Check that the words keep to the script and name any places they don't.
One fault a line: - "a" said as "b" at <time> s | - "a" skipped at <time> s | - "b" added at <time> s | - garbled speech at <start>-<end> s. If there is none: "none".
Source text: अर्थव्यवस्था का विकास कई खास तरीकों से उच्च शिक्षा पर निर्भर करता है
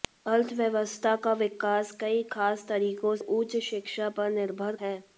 - "से" skipped at 3.1 s
- "करता" skipped at 4.7 s